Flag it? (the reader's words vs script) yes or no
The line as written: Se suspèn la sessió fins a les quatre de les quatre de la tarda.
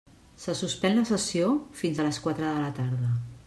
yes